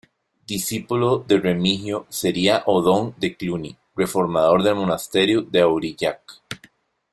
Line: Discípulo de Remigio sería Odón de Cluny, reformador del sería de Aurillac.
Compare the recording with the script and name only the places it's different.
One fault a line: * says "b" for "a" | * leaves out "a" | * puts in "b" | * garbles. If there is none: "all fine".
* says "monasterio" for "sería"